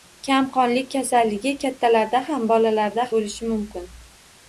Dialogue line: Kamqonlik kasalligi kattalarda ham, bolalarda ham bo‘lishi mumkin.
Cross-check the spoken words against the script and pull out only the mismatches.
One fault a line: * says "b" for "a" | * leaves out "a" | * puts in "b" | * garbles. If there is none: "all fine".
* leaves out "ham"